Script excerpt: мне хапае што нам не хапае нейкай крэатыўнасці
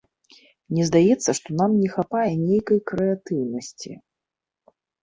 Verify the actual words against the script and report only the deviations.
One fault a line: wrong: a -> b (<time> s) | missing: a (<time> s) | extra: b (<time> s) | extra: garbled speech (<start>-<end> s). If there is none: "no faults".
wrong: хапае -> здаецца (0.9 s)